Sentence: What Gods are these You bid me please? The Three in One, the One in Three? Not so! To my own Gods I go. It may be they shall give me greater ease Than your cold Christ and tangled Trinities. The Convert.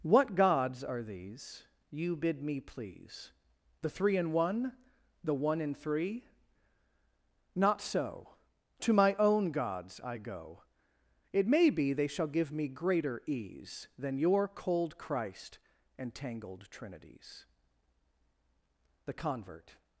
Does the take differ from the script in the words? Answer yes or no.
no